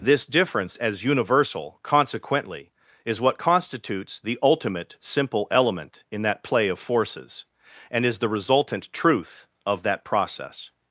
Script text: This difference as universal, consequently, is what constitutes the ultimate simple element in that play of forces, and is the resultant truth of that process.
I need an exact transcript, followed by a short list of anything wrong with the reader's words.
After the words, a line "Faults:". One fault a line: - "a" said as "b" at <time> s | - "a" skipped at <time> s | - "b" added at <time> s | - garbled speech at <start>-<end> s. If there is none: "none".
This difference as universal, consequently, is what constitutes the ultimate simple element in that play of forces, and is the resultant truth of that process.
Faults:
none